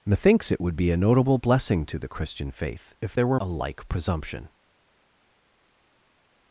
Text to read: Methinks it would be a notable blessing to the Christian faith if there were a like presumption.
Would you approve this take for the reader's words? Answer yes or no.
yes